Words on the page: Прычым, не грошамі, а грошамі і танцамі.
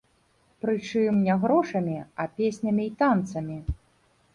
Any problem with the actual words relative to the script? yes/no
yes